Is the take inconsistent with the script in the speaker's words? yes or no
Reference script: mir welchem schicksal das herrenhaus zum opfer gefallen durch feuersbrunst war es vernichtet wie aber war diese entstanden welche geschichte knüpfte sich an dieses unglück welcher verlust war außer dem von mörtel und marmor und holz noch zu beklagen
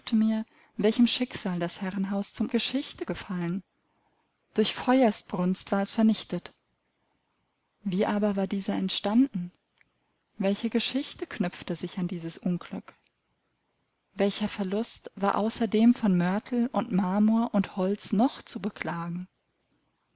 yes